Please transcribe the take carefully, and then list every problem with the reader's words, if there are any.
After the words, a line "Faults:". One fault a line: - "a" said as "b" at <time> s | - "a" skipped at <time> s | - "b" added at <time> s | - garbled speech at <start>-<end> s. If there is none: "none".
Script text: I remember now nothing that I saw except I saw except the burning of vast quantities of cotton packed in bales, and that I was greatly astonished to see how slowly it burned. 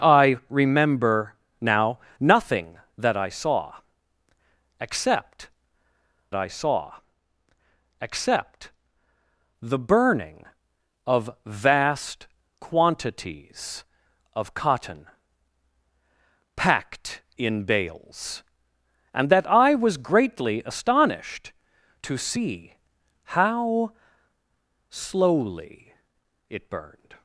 I remember now nothing that I saw except I saw except the burning of vast quantities of cotton packed in bales, and that I was greatly astonished to see how slowly it burned.
Faults:
none